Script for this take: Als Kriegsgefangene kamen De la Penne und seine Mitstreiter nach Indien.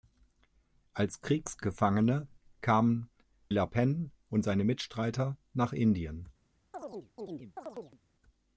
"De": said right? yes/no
no